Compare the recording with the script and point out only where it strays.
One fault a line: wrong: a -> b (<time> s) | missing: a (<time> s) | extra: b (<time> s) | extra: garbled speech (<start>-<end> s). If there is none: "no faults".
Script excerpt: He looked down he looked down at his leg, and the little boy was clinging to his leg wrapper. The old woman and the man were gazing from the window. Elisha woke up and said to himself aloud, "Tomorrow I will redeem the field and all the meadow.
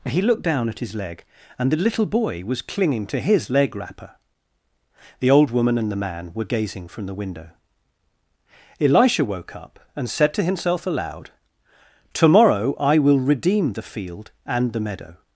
missing: he looked down (0.7 s)
missing: all (14.7 s)